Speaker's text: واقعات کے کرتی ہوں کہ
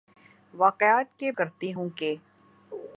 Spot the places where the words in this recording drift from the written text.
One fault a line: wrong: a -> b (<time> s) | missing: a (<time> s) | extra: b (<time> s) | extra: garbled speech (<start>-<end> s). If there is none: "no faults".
no faults